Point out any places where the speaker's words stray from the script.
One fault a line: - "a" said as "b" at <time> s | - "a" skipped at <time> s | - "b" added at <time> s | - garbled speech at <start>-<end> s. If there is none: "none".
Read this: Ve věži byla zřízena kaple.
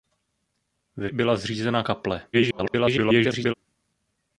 - "věži" skipped at 1.1 s
- garbled speech at 2.3-3.5 s